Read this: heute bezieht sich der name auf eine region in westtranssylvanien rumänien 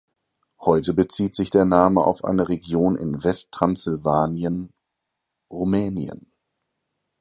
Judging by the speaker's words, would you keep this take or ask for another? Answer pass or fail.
pass